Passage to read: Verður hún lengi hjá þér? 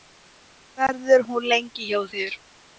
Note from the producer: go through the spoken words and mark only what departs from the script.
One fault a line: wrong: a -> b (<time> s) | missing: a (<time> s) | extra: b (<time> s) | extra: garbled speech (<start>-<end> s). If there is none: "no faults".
no faults